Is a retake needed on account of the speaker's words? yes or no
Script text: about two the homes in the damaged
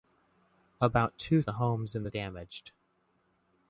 no